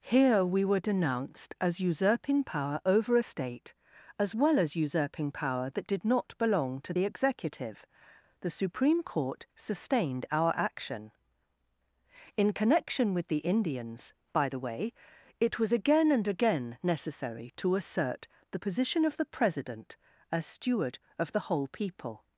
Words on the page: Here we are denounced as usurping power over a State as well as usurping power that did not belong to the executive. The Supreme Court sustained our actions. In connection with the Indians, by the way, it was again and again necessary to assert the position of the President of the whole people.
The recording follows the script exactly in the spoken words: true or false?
false